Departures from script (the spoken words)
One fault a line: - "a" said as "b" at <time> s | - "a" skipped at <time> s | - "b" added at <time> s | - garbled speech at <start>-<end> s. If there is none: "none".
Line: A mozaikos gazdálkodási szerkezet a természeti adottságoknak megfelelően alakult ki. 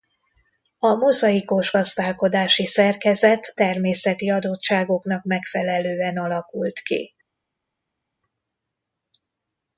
- "a" skipped at 3.5 s